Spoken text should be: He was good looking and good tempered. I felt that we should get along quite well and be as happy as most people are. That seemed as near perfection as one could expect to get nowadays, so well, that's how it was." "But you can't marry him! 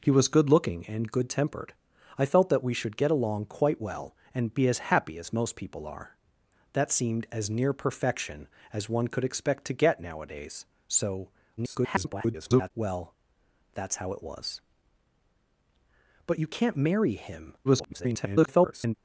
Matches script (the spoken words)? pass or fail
fail